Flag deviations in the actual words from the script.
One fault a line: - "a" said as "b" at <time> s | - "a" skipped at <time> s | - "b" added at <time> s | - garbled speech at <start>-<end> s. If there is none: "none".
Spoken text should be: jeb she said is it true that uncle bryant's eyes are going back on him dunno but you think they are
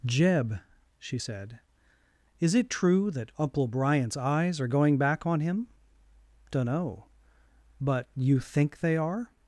none